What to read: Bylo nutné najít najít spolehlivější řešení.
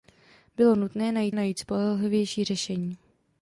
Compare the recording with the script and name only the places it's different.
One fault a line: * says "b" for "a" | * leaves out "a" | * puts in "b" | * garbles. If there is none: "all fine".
all fine